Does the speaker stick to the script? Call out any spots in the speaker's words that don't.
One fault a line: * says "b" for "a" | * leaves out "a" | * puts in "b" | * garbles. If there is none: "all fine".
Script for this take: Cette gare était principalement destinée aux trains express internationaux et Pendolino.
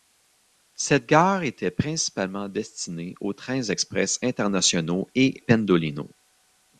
all fine